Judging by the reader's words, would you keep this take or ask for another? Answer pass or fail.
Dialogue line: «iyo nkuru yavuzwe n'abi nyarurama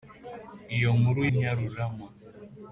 fail